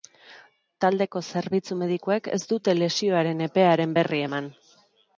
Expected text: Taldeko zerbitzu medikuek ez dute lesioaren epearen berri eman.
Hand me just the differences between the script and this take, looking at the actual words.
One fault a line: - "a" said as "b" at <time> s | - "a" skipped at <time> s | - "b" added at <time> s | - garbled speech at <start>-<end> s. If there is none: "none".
none